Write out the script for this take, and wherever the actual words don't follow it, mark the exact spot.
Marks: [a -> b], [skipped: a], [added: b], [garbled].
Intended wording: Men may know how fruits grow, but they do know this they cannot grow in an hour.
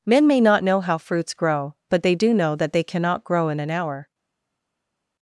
Men may [added: not] know how fruits grow, but they do know [this -> that] they cannot grow in an hour.